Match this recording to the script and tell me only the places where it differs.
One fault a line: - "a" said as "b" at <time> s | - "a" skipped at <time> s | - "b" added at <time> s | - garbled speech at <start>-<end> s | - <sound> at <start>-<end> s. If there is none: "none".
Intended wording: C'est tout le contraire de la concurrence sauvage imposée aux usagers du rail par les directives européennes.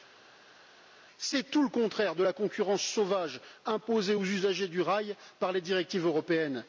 none